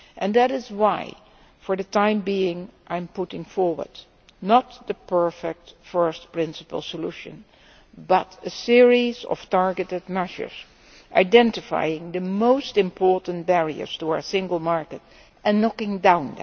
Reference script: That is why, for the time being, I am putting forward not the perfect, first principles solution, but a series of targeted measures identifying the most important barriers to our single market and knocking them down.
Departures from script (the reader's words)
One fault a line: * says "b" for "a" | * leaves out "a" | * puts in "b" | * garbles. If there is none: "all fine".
all fine